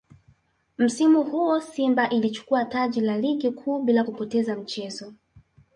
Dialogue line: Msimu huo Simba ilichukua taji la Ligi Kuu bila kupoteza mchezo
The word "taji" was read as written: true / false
true